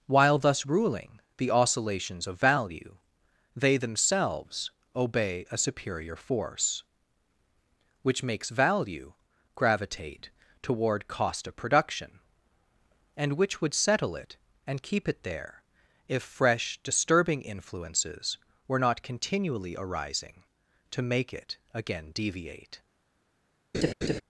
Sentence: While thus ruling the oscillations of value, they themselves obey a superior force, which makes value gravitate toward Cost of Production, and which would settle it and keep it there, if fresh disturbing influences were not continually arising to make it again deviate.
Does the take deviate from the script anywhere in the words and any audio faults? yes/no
yes